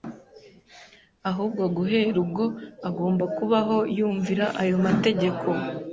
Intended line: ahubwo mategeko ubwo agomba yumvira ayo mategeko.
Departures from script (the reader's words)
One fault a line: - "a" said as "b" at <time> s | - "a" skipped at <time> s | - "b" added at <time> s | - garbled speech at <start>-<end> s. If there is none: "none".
- "mategeko" said as "guhera" at 1.8 s
- "kubaho" added at 3.4 s